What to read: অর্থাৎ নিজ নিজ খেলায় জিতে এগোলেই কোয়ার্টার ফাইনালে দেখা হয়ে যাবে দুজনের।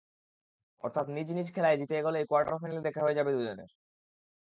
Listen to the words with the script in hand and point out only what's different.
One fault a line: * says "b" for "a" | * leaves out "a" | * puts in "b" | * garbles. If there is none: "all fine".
all fine